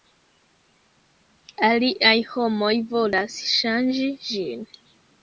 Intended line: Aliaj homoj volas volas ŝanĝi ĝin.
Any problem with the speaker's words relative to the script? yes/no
yes